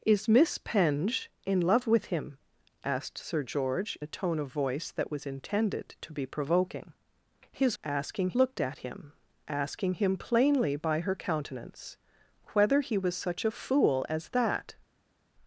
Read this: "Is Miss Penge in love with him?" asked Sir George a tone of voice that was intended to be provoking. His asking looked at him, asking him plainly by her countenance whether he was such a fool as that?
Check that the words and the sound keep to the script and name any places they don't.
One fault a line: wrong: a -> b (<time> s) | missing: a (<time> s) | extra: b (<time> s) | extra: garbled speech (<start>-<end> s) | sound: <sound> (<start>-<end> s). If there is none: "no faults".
no faults